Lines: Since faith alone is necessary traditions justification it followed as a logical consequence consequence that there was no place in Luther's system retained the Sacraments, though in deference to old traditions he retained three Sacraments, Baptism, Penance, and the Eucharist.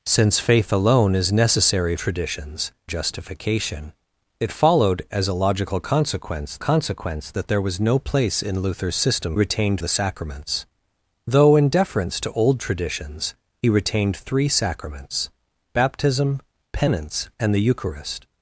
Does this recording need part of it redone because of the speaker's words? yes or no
no